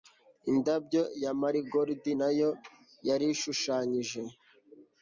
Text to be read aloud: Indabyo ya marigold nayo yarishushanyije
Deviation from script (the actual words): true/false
false